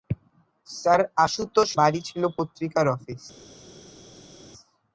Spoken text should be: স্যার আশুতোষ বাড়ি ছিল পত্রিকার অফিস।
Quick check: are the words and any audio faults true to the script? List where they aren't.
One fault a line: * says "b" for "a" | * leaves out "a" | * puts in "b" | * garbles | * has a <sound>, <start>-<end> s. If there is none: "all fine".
all fine